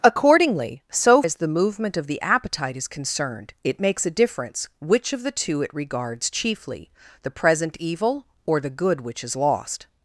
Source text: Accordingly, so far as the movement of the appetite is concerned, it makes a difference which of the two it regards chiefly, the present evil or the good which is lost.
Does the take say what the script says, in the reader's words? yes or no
no